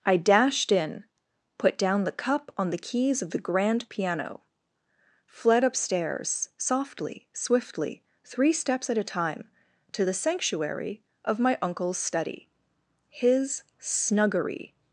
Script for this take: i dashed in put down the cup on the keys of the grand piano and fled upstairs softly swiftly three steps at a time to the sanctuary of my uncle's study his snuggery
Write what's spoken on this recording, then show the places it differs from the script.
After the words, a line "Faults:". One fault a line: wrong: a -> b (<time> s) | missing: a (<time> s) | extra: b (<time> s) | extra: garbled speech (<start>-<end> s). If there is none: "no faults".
i dashed in put down the cup on the keys of the grand piano fled upstairs softly swiftly three steps at a time to the sanctuary of my uncle's study his snuggery
Faults:
missing: and (4.4 s)